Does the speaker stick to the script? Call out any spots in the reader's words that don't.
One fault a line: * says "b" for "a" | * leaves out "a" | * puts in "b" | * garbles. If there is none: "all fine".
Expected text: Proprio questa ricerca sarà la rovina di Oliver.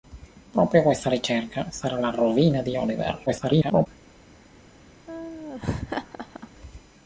* garbles